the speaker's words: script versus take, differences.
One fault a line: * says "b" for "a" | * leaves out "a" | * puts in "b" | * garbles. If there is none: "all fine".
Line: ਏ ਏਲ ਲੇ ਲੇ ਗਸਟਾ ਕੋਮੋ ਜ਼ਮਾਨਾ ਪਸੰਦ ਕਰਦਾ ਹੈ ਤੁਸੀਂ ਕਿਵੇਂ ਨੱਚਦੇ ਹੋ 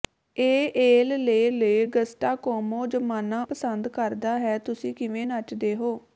all fine